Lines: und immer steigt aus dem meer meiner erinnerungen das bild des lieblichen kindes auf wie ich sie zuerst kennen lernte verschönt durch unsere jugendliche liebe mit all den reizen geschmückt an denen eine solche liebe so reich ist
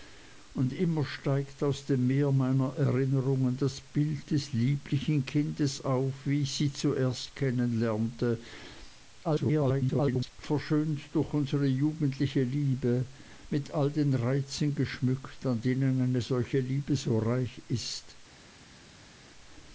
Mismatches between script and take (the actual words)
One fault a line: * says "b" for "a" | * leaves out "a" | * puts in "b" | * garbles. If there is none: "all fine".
* garbles